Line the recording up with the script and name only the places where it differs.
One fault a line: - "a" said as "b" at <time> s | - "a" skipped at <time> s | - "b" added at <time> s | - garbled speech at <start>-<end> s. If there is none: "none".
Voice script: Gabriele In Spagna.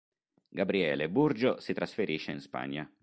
- "Burgio si trasferisce" added at 1.1 s